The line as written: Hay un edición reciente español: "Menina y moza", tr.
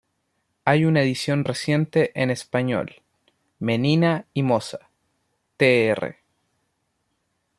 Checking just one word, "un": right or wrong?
wrong